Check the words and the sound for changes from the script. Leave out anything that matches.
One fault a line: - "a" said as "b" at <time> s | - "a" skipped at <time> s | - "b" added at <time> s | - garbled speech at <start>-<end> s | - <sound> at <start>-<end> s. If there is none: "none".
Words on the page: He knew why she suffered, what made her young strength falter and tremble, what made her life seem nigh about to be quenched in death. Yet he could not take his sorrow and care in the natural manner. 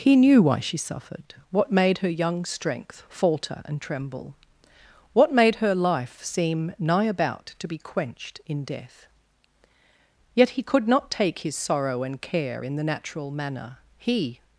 - "He" added at 14.0 s